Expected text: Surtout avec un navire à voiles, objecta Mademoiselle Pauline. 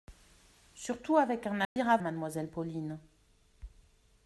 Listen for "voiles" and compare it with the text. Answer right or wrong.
wrong